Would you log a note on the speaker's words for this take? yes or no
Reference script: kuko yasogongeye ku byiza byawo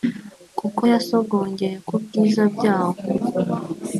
no